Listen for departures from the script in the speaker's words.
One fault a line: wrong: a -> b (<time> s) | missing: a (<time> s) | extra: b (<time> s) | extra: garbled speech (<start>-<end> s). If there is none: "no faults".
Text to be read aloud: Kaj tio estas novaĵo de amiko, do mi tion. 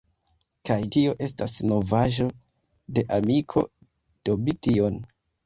no faults